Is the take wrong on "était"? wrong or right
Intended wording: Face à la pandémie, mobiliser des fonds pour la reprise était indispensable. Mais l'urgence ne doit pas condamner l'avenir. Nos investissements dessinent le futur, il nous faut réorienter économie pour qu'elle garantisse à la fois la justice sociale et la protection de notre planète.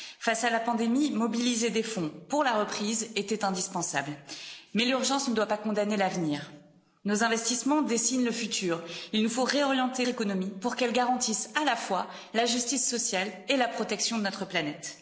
right